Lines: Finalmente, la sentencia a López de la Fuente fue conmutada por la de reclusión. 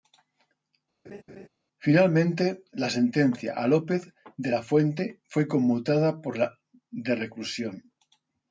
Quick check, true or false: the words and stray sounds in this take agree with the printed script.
false